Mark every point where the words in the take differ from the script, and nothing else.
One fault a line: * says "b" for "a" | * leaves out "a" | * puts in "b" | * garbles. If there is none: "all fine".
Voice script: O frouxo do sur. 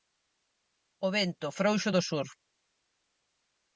* puts in "vento"